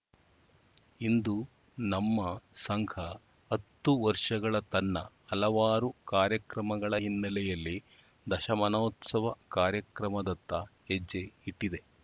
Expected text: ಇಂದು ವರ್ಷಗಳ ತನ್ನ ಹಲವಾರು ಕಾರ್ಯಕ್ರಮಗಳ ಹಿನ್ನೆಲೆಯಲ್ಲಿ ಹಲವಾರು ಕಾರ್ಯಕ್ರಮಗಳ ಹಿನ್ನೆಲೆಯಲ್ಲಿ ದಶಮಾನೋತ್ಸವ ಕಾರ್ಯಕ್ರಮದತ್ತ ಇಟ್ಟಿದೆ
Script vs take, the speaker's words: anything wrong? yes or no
yes